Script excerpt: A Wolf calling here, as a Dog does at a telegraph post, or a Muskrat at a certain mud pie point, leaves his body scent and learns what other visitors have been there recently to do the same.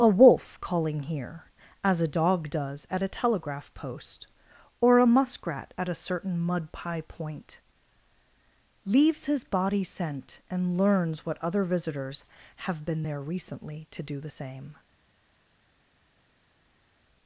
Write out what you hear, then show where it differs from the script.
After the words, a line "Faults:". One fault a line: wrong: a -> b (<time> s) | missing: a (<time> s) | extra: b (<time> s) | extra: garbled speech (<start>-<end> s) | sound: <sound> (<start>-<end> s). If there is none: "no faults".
A Wolf calling here, as a Dog does at a telegraph post, or a Muskrat at a certain mud pie point, leaves his body scent and learns what other visitors have been there recently to do the same.
Faults:
no faults